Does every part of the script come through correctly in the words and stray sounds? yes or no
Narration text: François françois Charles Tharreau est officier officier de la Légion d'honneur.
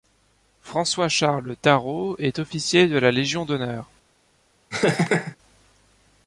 no